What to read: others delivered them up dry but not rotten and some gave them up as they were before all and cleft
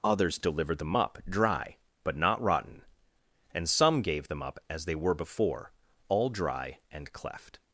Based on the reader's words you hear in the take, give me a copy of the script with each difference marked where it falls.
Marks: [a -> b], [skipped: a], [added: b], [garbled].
others delivered them up dry but not rotten and some gave them up as they were before all [added: dry] and cleft